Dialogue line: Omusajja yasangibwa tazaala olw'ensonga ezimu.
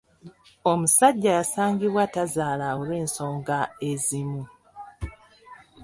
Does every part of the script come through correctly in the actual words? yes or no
yes